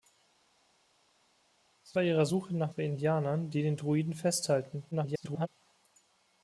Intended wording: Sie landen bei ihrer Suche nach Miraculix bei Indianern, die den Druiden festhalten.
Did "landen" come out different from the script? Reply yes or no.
yes